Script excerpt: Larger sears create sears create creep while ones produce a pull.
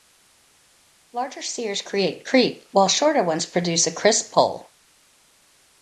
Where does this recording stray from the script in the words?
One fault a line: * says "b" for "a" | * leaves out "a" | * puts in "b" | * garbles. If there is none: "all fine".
* leaves out "sears create"
* puts in "shorter"
* puts in "crisp"